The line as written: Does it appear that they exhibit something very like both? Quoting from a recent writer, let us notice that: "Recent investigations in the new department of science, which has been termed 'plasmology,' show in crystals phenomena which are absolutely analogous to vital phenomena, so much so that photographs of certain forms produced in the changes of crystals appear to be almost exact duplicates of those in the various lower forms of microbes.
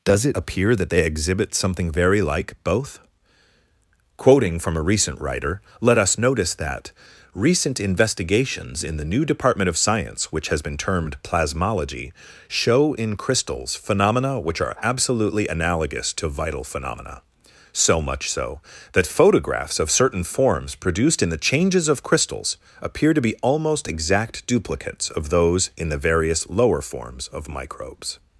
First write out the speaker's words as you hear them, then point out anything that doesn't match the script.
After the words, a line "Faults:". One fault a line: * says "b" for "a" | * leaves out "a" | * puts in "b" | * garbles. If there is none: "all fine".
Does it appear that they exhibit something very like both? Quoting from a recent writer, let us notice that: "Recent investigations in the new department of science, which has been termed 'plasmology,' show in crystals phenomena which are absolutely analogous to vital phenomena, so much so that photographs of certain forms produced in the changes of crystals appear to be almost exact duplicates of those in the various lower forms of microbes.
Faults:
all fine